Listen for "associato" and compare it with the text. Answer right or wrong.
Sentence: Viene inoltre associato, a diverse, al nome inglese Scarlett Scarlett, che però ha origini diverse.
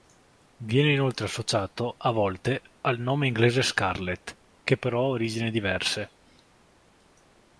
right